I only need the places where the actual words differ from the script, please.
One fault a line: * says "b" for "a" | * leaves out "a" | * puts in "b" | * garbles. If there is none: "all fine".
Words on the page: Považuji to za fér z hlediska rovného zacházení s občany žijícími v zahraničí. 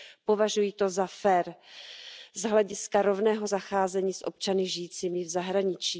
all fine